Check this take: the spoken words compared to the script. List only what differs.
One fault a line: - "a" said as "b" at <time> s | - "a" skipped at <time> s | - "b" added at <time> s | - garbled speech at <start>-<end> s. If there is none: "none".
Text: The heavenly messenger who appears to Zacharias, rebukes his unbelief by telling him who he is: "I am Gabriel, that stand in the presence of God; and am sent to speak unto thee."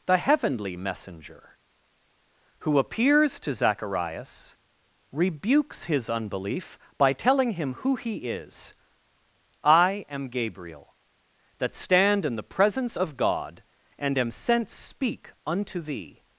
- "to" skipped at 14.7 s